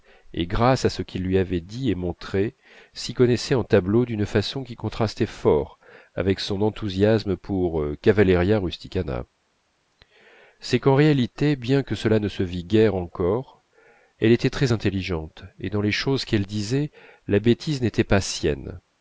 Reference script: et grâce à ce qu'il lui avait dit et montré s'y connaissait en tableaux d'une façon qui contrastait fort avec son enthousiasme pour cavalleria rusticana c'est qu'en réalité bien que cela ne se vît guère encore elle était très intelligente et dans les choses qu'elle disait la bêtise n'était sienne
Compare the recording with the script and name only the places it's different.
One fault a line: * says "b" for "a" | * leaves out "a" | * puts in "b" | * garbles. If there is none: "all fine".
* puts in "pas"